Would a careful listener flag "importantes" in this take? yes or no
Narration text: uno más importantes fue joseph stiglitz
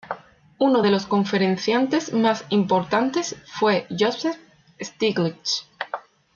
no